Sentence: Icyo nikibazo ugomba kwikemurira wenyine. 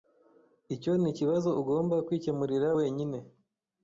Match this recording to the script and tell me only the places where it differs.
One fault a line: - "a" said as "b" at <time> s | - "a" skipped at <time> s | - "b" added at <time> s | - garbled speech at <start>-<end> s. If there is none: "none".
none